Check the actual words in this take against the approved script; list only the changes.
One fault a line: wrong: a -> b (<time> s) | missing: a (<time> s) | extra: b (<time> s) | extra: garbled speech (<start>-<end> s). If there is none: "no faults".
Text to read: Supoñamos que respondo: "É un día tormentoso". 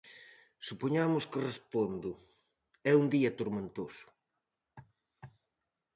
no faults